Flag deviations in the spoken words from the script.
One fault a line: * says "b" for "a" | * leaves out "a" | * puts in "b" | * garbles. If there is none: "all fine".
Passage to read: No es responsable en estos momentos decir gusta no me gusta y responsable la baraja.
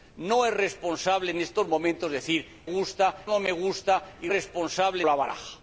all fine